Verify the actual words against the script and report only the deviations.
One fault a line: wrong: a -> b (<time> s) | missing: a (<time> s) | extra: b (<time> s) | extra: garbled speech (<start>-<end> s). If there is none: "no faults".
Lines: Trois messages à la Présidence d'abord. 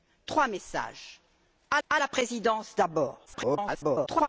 extra: à (1.9 s)
extra: garbled speech (3.3-4.3 s)